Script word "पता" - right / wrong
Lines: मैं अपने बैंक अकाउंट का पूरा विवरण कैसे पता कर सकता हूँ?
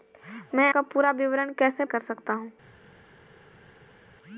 wrong